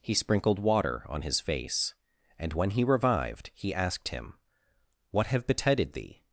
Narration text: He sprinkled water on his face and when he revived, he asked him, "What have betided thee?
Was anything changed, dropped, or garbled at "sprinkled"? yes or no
no